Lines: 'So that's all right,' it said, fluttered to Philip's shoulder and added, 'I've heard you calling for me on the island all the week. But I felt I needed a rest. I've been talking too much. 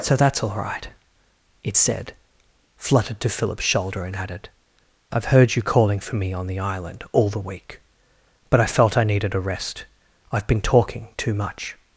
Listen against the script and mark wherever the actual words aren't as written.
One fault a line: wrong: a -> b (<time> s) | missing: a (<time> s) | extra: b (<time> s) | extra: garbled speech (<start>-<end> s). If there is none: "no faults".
no faults